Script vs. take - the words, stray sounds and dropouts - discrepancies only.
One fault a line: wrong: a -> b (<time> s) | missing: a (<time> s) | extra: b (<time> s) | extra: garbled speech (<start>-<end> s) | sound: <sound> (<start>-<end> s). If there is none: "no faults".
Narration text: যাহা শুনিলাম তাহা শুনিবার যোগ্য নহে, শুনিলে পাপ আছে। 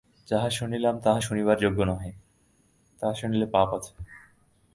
extra: তাহা (3.0 s)